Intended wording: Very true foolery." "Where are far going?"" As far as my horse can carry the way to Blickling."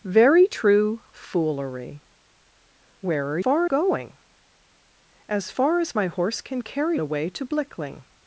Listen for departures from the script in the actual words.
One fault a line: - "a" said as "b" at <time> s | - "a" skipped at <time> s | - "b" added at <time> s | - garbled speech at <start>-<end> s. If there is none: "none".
none